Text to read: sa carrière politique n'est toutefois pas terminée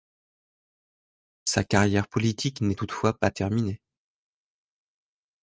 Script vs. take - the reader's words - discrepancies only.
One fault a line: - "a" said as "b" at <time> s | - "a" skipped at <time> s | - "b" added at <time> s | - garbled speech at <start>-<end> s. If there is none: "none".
none